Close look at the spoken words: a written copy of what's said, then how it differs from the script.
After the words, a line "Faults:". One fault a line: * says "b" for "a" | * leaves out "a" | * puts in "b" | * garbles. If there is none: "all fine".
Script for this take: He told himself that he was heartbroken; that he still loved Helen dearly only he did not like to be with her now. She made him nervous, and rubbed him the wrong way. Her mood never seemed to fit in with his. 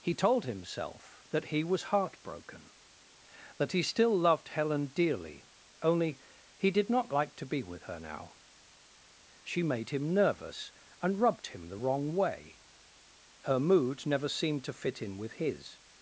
He told himself that he was heartbroken; that he still loved Helen dearly only he did not like to be with her now. She made him nervous, and rubbed him the wrong way. Her mood never seemed to fit in with his.
Faults:
all fine